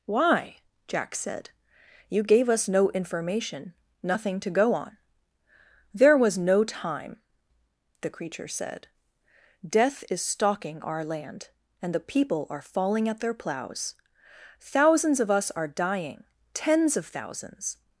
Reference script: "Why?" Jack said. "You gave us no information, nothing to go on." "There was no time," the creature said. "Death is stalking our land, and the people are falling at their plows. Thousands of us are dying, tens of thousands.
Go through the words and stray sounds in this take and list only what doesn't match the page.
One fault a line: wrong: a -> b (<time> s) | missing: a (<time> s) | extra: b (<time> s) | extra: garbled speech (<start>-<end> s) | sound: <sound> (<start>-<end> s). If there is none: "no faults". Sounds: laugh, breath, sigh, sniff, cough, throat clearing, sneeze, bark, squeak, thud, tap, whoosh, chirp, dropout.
no faults